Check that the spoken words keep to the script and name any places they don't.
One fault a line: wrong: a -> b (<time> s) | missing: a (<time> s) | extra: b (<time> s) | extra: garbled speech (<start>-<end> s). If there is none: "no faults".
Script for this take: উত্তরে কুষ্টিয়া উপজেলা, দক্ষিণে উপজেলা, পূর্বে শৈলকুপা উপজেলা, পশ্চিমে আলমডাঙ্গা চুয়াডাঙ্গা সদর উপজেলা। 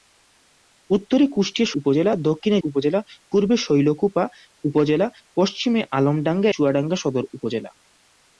no faults